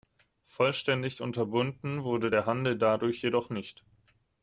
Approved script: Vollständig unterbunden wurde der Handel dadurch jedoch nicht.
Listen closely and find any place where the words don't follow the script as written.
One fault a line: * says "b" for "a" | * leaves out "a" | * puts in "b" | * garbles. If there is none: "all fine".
all fine